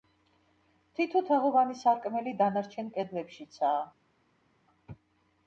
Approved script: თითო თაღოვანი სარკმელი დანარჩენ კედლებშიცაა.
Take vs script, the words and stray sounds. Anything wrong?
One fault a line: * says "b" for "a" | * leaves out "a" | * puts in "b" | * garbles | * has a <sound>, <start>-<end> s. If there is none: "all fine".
all fine